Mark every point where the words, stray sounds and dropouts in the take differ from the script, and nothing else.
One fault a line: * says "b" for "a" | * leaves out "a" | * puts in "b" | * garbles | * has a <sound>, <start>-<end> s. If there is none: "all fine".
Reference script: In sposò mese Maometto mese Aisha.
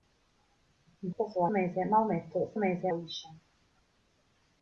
all fine